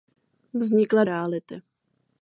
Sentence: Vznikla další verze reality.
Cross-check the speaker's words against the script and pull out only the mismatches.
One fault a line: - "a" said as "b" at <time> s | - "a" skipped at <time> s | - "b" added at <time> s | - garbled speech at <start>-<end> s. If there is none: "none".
- "další verze" skipped at 1.0 s